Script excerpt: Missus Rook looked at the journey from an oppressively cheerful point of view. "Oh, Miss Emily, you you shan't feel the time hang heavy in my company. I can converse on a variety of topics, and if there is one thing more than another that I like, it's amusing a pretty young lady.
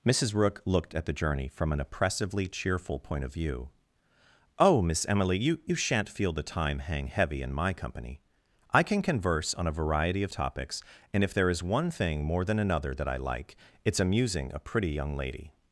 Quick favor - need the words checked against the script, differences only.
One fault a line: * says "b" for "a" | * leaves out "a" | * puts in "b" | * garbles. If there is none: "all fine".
all fine